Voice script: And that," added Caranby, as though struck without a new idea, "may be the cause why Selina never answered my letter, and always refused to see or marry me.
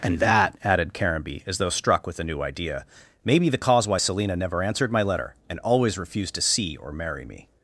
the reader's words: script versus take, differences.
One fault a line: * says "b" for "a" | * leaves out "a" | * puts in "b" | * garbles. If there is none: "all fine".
* says "with" for "without"